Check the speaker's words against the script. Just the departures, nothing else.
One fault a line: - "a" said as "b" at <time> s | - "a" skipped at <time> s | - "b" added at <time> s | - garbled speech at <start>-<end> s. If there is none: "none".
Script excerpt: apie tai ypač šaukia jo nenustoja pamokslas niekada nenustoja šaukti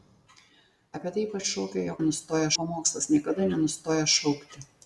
none